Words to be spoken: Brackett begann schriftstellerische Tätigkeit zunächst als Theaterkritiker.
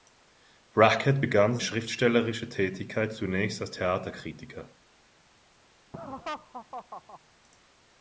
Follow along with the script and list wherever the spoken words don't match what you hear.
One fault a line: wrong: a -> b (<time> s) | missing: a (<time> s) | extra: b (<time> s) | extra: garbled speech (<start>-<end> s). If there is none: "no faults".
no faults